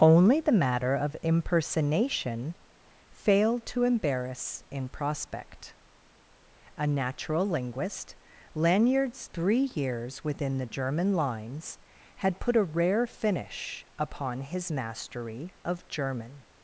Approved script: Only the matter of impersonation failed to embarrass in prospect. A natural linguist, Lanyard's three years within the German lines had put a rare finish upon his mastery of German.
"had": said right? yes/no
yes